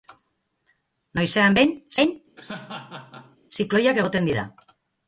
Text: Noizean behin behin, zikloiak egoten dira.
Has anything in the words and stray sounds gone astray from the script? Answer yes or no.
yes